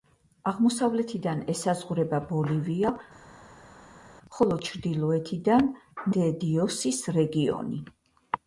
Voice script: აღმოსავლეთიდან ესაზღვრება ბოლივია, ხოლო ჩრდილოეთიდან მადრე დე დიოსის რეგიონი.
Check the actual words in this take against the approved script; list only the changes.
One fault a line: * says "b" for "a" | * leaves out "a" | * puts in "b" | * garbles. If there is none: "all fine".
* leaves out "მადრე"